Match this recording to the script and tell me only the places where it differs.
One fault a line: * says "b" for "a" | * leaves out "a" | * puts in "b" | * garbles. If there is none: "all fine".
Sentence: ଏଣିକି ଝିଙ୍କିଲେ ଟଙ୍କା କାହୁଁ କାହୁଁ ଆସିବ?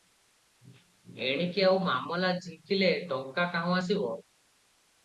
* puts in "ଆଉ ମାମଲା"
* leaves out "କାହୁଁ"